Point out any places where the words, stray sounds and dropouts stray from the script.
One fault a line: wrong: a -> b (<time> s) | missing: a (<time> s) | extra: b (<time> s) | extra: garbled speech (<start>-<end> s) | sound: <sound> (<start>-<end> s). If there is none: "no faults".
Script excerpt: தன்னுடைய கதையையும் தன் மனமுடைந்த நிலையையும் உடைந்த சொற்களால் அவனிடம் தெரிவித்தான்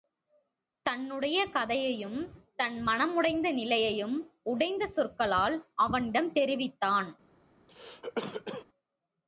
sound: cough (7.7-8.7 s)